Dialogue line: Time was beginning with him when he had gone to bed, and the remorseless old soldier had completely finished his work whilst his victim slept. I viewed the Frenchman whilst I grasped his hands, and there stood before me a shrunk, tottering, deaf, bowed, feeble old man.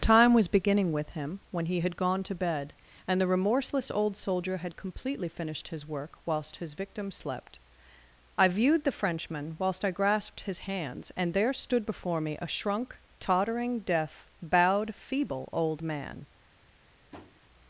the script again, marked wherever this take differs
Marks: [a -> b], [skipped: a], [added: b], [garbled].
Time was beginning with him when he had gone to bed, and the remorseless old soldier had completely finished his work whilst his victim slept. I viewed the Frenchman whilst I grasped his hands, and there stood before me a shrunk, tottering, deaf, bowed, feeble old man.